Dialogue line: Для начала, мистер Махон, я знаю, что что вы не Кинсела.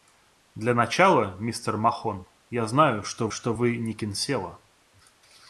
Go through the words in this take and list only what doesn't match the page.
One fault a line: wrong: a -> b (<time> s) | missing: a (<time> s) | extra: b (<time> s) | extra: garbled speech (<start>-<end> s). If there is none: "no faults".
no faults